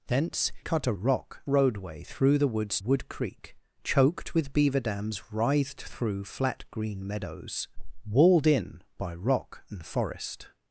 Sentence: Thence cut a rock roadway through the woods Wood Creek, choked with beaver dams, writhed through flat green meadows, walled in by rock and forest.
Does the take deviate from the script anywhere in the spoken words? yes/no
no